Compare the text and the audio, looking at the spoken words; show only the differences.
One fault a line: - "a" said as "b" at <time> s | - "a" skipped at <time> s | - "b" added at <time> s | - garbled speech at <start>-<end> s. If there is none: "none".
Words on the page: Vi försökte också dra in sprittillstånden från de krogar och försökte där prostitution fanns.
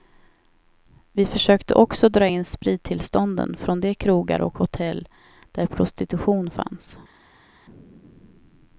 - "försökte" said as "hotell" at 4.6 s